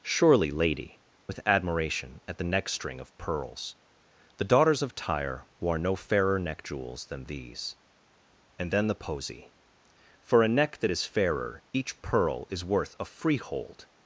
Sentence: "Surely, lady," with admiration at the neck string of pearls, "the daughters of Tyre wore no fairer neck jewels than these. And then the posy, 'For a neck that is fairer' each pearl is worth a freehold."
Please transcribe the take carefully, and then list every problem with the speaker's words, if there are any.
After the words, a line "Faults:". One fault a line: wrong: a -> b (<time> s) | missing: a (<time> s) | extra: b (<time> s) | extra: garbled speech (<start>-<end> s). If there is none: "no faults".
"Surely, lady," with admiration at the neck string of pearls, "the daughters of Tyre wore no fairer neck jewels than these. And then the posy, 'For a neck that is fairer' each pearl is worth a freehold."
Faults:
no faults